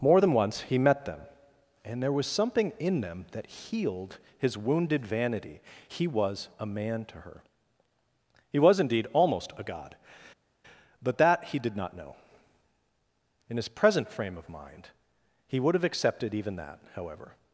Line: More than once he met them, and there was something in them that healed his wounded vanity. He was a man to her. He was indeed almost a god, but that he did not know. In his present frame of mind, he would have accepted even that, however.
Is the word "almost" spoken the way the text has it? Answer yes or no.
yes